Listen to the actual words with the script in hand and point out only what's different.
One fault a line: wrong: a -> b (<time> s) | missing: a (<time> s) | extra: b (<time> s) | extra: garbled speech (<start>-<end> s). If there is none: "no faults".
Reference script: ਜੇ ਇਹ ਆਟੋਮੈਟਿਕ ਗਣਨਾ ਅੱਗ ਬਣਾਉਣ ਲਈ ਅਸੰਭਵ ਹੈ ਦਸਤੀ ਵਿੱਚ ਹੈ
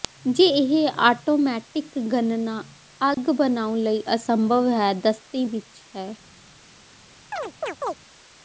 no faults